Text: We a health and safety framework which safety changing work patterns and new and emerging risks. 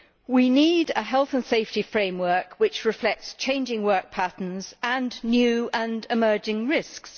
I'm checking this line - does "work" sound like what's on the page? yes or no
yes